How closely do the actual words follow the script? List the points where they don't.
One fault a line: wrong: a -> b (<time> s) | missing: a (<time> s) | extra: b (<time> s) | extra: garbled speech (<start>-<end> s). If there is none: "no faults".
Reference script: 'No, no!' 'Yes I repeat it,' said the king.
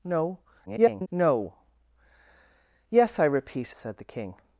extra: garbled speech (0.7-1.1 s)
missing: it (3.8 s)